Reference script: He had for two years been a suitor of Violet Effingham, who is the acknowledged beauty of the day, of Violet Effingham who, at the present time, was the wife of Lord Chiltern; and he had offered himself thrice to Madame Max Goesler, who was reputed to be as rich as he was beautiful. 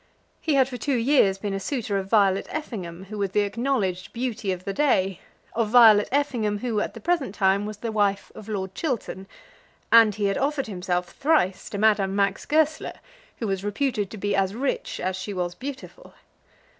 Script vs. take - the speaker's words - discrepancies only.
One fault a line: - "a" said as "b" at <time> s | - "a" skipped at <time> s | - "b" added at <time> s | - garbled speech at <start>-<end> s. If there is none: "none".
- "is" said as "was" at 3.2 s
- "he" said as "she" at 15.2 s